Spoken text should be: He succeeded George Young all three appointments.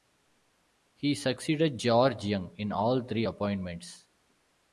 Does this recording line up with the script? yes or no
no